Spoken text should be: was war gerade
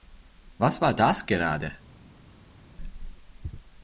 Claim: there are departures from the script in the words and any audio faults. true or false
true